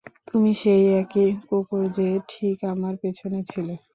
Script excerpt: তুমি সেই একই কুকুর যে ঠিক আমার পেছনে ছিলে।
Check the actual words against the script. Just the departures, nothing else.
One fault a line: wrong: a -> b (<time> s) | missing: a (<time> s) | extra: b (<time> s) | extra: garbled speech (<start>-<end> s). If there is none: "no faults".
no faults